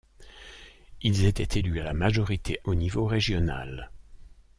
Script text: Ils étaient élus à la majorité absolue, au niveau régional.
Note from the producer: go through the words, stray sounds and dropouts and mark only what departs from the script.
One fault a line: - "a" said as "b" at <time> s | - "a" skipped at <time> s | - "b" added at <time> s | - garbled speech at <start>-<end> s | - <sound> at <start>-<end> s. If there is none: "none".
- "absolue" skipped at 2.6 s